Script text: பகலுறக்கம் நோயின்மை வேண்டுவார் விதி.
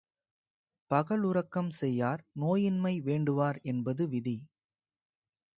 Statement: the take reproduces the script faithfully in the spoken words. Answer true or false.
false